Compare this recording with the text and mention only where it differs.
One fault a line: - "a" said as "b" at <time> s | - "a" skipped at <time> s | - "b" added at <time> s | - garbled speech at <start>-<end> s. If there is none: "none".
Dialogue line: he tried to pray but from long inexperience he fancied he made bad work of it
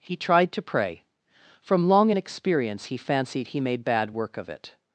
- "but" skipped at 1.0 s